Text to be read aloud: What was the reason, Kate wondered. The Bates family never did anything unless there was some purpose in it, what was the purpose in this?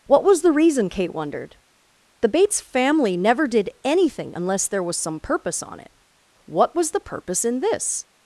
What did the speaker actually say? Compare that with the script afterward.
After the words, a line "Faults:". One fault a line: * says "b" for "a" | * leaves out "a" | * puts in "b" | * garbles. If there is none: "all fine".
What was the reason, Kate wondered. The Bates family never did anything unless there was some purpose on it, what was the purpose in this?
Faults:
* says "on" for "in"